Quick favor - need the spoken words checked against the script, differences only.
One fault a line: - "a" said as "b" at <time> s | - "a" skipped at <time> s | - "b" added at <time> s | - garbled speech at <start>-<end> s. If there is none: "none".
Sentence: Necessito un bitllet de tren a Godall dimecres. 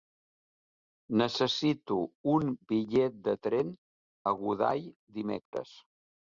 none